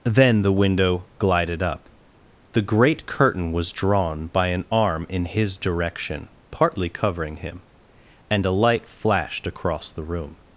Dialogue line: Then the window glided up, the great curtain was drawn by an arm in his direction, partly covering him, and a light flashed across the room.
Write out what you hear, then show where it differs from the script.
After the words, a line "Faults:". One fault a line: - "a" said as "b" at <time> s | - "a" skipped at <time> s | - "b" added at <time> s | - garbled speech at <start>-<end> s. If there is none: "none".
Then the window glided up, the great curtain was drawn by an arm in his direction, partly covering him, and a light flashed across the room.
Faults:
none